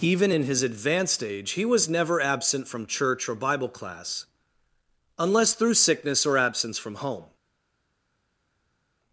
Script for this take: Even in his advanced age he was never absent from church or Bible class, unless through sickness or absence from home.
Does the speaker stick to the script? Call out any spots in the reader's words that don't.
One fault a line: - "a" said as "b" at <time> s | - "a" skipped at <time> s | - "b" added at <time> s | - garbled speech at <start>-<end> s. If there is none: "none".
none